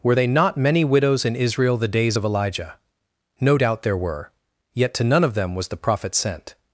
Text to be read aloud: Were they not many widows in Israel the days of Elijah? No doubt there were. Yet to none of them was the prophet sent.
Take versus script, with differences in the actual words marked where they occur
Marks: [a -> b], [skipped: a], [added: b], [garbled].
Were they not many widows in Israel the days of Elijah? No doubt there were. Yet to none of them was the prophet sent.